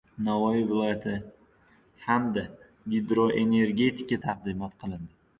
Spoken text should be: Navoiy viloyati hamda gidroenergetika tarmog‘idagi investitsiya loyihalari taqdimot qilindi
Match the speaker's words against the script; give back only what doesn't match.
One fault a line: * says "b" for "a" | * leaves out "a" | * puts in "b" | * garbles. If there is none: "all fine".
* leaves out "tarmog‘idagi investitsiya loyihalari"